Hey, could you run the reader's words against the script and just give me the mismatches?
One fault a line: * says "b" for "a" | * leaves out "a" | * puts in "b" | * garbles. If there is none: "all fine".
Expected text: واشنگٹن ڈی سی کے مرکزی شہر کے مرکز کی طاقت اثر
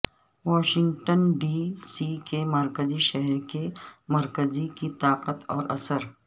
* puts in "اور"